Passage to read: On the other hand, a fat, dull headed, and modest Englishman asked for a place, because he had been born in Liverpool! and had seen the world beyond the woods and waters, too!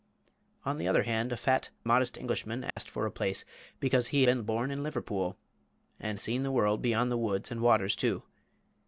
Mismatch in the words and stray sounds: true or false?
true